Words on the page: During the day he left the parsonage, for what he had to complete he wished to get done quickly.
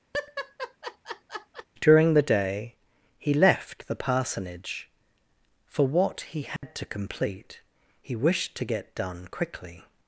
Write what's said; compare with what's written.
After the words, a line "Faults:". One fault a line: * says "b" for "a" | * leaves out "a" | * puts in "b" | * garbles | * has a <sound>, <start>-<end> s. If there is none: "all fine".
During the day he left the parsonage, for what he had to complete he wished to get done quickly.
Faults:
* has a laugh, 0.1-1.7 s
* has a dropout, 6.6-6.6 s